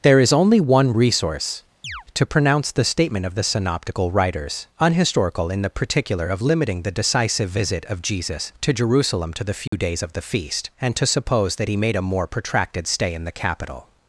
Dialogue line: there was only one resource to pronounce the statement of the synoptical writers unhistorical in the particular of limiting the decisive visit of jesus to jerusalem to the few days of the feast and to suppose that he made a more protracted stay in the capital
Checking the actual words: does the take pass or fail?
fail